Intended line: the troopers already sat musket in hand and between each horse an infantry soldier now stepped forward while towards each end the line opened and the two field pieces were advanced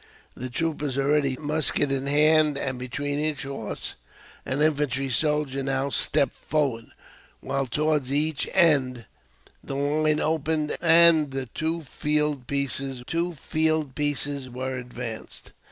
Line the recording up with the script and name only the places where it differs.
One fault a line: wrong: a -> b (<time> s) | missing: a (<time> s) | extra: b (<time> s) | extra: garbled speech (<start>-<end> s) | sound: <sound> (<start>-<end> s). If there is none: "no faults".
missing: sat (1.4 s)
extra: two field pieces (13.0 s)